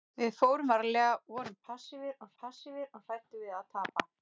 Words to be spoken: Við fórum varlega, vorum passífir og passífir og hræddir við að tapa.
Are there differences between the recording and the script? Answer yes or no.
no